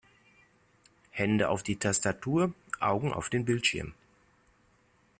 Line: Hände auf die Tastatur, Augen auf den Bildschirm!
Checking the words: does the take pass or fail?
pass